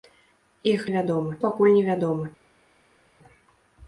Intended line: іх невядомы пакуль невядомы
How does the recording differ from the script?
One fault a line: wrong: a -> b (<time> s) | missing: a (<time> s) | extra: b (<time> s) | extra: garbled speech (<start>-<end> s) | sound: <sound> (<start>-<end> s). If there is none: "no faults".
no faults